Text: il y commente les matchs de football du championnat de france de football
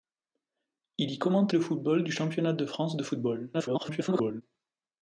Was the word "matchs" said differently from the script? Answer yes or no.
yes